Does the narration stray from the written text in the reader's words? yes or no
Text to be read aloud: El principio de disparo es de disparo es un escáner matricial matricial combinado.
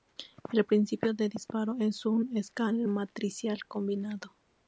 yes